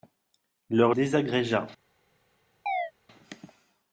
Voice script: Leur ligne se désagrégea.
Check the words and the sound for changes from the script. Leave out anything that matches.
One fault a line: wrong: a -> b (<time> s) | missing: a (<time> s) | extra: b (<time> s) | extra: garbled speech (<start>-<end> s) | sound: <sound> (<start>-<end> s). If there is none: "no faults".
missing: ligne se (0.9 s)
sound: chirp (2.7-2.9 s)